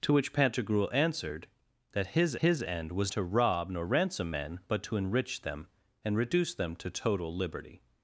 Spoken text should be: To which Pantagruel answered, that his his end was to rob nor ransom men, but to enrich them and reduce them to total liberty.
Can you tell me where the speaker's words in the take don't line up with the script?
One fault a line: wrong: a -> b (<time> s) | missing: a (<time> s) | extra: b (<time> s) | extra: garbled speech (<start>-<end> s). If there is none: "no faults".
no faults